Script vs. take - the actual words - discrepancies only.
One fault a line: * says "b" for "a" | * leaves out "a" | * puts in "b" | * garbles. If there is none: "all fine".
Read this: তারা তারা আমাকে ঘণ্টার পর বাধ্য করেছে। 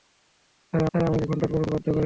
all fine